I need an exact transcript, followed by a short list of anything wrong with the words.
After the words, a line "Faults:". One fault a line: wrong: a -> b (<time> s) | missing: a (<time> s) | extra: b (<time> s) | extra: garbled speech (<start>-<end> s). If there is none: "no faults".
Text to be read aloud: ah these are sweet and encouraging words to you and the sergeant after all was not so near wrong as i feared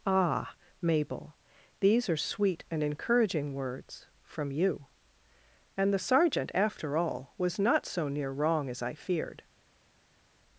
ah mabel these are sweet and encouraging words from you and the sergeant after all was not so near wrong as i feared
Faults:
extra: mabel (0.8 s)
wrong: to -> from (4.2 s)